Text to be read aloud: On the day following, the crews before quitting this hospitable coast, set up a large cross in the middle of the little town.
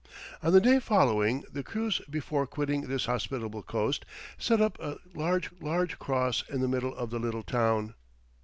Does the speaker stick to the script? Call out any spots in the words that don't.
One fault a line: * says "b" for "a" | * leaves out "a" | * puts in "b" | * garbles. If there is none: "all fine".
* puts in "large"